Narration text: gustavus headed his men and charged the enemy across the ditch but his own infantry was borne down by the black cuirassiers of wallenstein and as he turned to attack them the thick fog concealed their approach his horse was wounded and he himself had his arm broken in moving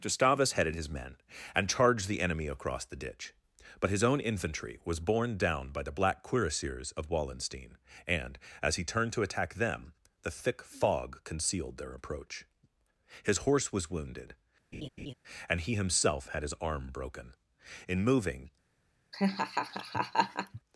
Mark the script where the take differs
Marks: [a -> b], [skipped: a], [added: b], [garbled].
gustavus headed his men and charged the enemy across the ditch but his own infantry was borne down by the black cuirassiers of wallenstein and as he turned to attack them the thick fog concealed their approach his horse was wounded and he himself had his arm broken in moving